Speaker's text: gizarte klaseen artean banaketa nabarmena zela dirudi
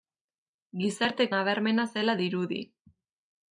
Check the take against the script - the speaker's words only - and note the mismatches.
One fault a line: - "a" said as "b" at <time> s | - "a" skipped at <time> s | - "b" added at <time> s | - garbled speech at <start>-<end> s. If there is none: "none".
- "klaseen artean banaketa" skipped at 1.3 s